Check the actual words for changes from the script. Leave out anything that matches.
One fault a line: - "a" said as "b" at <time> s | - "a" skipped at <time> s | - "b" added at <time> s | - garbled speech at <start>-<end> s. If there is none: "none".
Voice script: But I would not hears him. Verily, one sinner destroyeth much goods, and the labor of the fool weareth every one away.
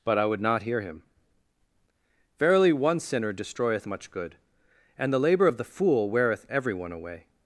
- "hears" said as "hear" at 0.6 s
- "goods" said as "good" at 4.1 s